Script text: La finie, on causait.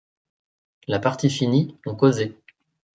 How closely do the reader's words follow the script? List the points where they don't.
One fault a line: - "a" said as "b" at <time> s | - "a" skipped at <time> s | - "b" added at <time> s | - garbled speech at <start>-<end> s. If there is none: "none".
- "partie" added at 1.0 s